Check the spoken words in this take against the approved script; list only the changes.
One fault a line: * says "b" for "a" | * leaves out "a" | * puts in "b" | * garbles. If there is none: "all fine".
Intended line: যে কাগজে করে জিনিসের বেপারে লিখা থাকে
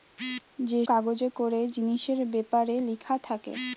all fine